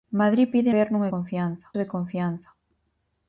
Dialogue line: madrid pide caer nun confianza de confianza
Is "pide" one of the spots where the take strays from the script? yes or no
no